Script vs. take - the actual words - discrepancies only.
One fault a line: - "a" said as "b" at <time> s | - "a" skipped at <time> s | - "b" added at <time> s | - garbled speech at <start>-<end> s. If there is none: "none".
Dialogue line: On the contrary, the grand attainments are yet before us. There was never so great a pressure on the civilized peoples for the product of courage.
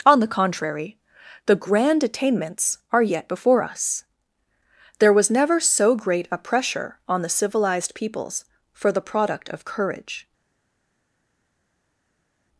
none